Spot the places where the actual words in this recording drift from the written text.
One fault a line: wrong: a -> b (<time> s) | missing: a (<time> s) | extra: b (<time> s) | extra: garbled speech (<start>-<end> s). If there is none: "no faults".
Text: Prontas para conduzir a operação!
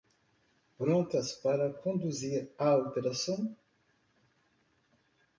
no faults